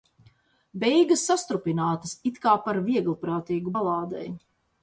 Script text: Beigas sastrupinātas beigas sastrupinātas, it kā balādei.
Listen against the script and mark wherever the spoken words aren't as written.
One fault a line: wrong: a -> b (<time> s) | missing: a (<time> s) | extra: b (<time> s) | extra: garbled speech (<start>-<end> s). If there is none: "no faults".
wrong: beigas sastrupinātas it kā -> it kā par vieglprātīgu (2.3 s)